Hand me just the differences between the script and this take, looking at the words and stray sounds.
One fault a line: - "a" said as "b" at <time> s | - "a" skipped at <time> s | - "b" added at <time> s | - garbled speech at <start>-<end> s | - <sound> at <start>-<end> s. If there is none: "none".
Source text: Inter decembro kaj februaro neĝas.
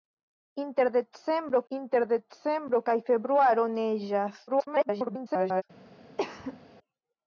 - "inter decembro" added at 1.8 s
- garbled speech at 4.5-5.6 s
- cough at 6.2-6.6 s